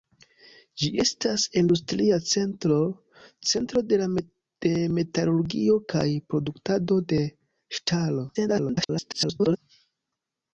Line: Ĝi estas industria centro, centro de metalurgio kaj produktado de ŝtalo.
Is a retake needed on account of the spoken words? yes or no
yes